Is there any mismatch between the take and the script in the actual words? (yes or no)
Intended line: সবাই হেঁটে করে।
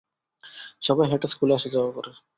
yes